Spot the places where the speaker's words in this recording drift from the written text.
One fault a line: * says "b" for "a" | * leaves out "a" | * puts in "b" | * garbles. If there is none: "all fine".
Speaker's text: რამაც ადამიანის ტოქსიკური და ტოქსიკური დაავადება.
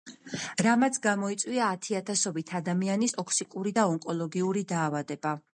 * puts in "გამოიწვია ათიათასობით"
* says "ონკოლოგიური" for "ტოქსიკური"